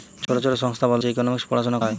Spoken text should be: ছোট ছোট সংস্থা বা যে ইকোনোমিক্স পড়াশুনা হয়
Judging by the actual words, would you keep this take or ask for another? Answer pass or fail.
pass